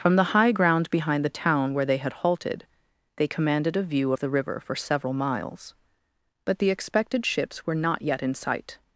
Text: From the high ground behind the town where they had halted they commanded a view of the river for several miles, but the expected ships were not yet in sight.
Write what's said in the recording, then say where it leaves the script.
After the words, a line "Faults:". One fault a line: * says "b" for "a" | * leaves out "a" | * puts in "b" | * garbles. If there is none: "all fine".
From the high ground behind the town where they had halted they commanded a view of the river for several miles, but the expected ships were not yet in sight.
Faults:
all fine